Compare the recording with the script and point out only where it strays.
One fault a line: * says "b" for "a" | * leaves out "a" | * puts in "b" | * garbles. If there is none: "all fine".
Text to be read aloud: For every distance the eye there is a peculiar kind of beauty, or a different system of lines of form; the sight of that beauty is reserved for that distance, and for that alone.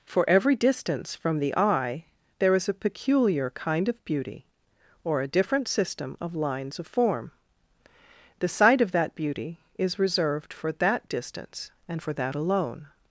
* puts in "from"